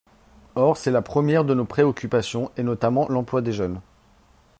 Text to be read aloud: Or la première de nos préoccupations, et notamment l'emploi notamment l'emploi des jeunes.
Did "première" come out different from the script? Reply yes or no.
no